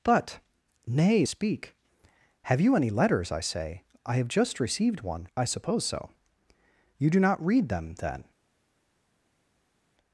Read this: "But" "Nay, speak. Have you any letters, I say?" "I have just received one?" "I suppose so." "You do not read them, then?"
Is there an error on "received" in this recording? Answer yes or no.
no